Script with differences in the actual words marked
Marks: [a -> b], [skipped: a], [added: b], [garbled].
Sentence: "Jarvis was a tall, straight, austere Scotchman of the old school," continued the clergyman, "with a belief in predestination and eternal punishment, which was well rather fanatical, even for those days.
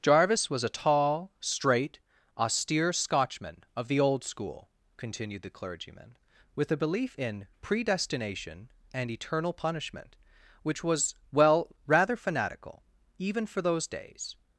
"Jarvis was a tall, straight, austere Scotchman of the old school," continued the clergyman, "with a belief in predestination and eternal punishment, which was well rather fanatical, even for those days.